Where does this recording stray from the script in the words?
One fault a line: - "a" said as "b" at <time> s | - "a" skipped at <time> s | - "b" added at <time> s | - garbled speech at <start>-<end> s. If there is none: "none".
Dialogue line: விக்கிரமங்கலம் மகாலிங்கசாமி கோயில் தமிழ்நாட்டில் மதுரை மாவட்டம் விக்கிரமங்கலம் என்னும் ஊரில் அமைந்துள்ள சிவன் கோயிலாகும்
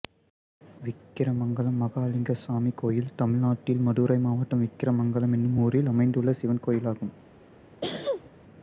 none